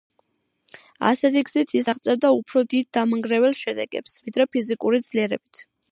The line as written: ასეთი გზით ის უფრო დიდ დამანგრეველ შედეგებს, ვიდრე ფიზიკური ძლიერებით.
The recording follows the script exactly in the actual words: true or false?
false